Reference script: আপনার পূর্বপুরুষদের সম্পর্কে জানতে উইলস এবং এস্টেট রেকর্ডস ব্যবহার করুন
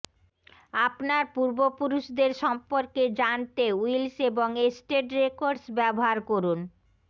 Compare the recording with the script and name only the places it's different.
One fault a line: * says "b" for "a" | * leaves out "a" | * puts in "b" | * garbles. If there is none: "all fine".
all fine